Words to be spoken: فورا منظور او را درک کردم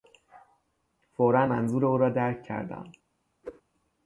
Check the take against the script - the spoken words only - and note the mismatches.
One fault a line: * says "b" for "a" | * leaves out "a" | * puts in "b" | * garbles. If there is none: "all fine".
all fine